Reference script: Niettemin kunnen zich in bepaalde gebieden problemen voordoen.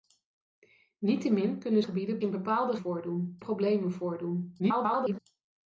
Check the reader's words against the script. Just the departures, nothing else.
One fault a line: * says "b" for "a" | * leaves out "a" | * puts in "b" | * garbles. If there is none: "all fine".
* says "gebieden" for "zich"
* says "voordoen" for "gebieden"
* garbles